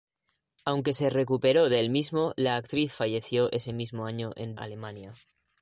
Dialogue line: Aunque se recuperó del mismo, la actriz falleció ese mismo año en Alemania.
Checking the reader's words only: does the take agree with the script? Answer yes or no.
yes